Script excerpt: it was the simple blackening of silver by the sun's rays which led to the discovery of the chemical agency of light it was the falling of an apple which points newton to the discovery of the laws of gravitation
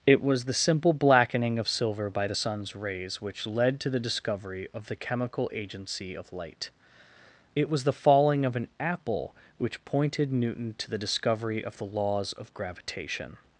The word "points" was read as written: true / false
false